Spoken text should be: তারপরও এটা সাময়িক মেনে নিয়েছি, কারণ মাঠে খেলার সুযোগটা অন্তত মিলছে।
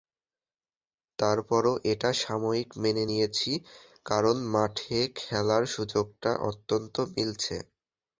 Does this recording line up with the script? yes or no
yes